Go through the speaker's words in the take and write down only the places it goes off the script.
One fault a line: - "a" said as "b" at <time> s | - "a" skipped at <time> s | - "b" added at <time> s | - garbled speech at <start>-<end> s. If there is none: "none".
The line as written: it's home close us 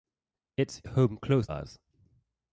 none